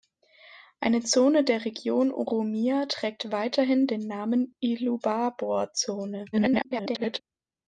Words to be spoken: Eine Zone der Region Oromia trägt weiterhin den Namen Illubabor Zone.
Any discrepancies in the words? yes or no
yes